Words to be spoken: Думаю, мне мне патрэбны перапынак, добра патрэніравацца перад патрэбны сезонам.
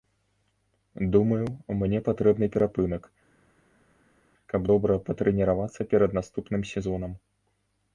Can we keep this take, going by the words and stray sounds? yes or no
no